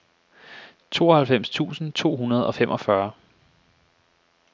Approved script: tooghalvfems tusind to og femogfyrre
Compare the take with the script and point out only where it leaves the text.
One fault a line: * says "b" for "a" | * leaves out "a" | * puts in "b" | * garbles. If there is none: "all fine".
* puts in "hundrede"